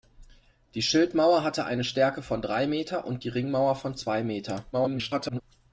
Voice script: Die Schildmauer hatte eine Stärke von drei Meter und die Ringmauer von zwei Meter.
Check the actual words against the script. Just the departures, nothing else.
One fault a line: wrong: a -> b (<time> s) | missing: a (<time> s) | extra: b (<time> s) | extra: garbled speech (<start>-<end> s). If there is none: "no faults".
extra: garbled speech (4.7-5.4 s)